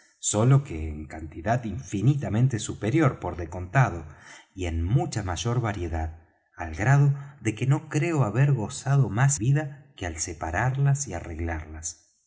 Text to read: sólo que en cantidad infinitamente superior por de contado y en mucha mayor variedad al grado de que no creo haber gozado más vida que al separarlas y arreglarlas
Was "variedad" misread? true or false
false